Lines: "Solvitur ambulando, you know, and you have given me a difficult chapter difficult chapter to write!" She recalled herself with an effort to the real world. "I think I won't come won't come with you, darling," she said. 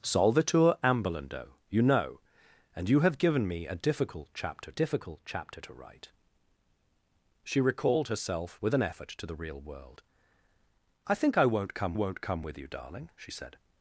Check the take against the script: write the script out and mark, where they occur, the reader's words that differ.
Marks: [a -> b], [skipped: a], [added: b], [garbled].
"Solvitur ambulando, you know, and you have given me a difficult chapter difficult chapter to write!" She recalled herself with an effort to the real world. "I think I won't come won't come with you, darling," she said.